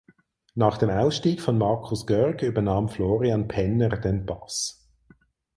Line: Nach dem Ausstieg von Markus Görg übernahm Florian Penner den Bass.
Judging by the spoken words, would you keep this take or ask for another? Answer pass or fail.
pass